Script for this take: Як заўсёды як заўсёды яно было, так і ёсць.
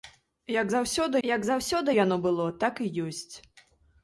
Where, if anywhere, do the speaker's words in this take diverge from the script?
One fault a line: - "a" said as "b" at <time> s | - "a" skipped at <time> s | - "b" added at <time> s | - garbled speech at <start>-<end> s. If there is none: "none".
none